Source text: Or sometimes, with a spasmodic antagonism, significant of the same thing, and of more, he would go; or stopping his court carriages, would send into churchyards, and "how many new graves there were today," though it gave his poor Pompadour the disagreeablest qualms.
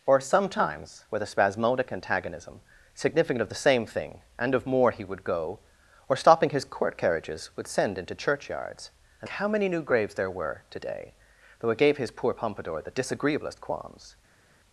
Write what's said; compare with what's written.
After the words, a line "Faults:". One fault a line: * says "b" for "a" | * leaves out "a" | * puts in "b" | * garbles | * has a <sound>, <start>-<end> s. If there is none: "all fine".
Or sometimes, with a spasmodic antagonism, significant of the same thing, and of more, he would go; or stopping his court carriages, would send into churchyards, and "how many new graves there were today," though it gave his poor Pompadour the disagreeablest qualms.
Faults:
all fine